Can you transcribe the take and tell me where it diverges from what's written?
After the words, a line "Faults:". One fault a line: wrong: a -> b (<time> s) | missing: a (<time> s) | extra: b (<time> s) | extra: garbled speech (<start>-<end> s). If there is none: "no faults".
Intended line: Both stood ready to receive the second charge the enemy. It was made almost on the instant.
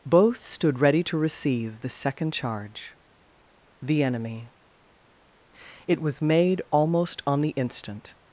Both stood ready to receive the second charge the enemy. It was made almost on the instant.
Faults:
no faults